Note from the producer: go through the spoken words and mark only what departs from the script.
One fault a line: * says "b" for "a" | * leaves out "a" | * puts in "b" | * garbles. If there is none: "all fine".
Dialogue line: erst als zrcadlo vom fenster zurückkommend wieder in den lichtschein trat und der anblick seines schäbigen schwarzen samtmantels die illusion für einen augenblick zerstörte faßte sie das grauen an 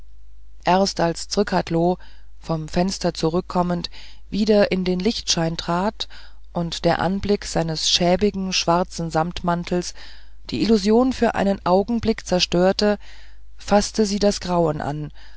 all fine